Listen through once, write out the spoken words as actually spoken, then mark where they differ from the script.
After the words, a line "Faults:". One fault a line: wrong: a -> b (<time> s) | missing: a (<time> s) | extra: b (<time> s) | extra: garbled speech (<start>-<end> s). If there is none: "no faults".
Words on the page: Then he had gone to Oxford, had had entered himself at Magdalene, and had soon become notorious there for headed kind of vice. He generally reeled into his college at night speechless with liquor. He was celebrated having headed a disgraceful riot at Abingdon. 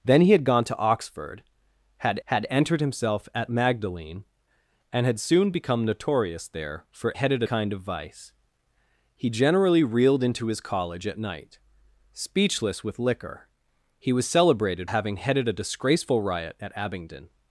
Then he had gone to Oxford, had had entered himself at Magdalene, and had soon become notorious there for headed kind of vice. He generally reeled into his college at night speechless with liquor. He was celebrated having headed a disgraceful riot at Abingdon.
Faults:
no faults